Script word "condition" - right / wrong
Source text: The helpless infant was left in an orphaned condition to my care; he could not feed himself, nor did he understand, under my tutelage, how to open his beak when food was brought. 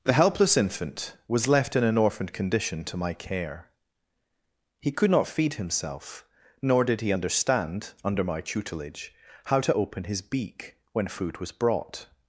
right